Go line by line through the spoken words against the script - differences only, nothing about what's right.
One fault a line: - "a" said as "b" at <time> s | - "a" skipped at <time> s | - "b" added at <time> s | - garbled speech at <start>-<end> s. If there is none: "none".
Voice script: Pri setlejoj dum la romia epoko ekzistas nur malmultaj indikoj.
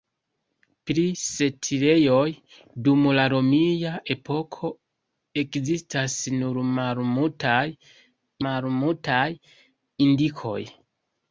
- "malmultaj" added at 8.5 s